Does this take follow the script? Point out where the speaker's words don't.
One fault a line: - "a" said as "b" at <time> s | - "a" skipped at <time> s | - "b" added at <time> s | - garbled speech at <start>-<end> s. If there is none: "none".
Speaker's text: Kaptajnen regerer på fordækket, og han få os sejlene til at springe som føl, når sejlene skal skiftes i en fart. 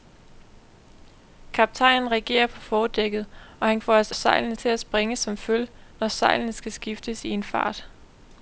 none